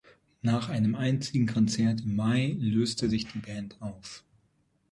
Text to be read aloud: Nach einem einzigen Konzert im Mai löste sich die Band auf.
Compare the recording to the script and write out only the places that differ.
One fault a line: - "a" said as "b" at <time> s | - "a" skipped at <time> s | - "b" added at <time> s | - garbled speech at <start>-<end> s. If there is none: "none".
none